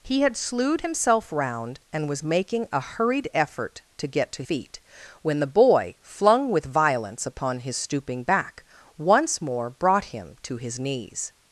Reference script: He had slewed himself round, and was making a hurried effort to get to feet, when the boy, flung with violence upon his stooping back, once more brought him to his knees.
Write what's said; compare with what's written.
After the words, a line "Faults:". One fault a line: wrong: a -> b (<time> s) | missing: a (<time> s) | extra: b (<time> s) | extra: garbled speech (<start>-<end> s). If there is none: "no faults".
He had slewed himself round, and was making a hurried effort to get to feet, when the boy, flung with violence upon his stooping back, once more brought him to his knees.
Faults:
no faults